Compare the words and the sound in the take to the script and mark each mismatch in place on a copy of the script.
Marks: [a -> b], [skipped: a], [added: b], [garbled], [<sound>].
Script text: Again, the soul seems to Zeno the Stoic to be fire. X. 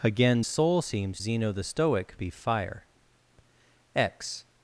Again, [skipped: the] soul seems [skipped: to] Zeno the Stoic [skipped: to] be fire. X.